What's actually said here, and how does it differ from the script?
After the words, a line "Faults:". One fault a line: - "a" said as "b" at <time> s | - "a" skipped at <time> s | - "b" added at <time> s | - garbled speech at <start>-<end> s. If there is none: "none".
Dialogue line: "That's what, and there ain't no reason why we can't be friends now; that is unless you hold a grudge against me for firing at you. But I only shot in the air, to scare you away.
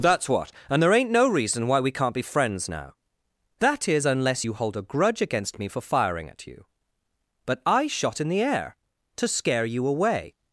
"That's what, and there ain't no reason why we can't be friends now; that is unless you hold a grudge against me for firing at you. But I shot in the air, to scare you away.
Faults:
- "only" skipped at 7.9 s